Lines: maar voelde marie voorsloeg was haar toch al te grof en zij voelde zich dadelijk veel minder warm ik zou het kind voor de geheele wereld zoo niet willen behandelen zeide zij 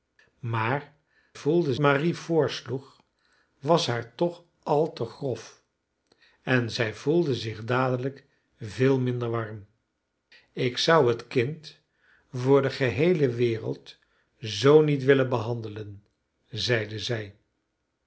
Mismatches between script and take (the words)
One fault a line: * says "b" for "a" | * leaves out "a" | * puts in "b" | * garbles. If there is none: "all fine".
all fine